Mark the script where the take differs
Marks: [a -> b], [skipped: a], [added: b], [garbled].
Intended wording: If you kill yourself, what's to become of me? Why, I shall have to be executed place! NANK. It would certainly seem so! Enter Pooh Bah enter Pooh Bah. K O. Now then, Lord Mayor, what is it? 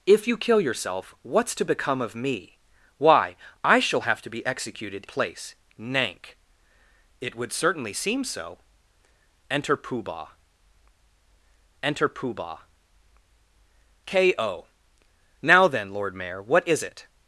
If you kill yourself, what's to become of me? Why, I shall have to be executed place! NANK. It would certainly seem so! Enter Pooh Bah enter Pooh Bah. K O. Now then, Lord Mayor, what is it?